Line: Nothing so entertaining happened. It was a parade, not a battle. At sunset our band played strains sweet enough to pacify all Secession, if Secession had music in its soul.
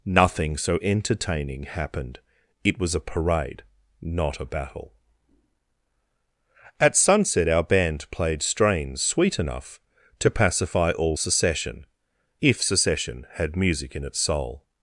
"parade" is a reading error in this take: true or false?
false